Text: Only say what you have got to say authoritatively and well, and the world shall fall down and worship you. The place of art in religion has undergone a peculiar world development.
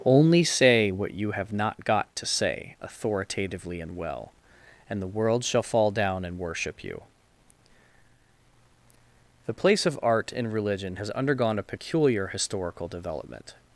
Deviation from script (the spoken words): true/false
true